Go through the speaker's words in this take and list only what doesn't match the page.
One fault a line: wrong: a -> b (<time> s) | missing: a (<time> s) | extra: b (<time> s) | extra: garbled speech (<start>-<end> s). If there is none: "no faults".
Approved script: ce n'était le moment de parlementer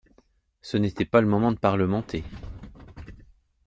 extra: pas (1.1 s)